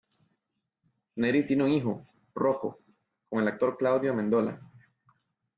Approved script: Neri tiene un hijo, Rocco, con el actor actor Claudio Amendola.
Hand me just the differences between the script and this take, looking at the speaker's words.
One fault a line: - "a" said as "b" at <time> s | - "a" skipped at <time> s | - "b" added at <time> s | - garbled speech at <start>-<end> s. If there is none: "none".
- "actor" skipped at 3.8 s